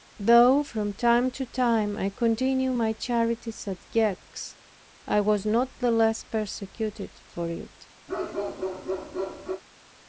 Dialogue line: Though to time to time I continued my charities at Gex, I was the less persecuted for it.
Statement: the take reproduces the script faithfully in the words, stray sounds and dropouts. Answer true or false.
false